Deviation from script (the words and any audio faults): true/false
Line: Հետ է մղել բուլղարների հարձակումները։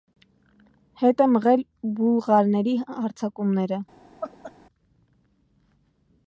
true